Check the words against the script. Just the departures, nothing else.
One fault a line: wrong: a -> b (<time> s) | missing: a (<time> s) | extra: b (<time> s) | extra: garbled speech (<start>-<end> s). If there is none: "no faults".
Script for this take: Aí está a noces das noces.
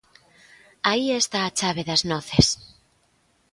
wrong: noces -> chave (1.6 s)